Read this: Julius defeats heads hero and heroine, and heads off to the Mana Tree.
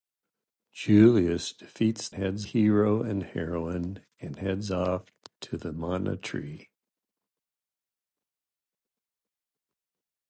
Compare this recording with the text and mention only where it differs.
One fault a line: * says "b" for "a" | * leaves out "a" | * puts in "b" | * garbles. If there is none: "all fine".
all fine